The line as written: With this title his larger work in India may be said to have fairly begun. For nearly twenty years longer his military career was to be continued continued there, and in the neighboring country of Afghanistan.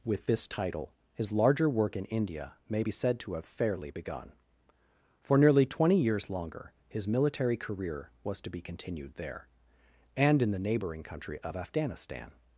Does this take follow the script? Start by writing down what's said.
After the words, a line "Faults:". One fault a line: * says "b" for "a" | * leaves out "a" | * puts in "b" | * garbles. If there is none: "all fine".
With this title his larger work in India may be said to have fairly begun. For nearly twenty years longer his military career was to be continued there, and in the neighboring country of Afghanistan.
Faults:
* leaves out "continued"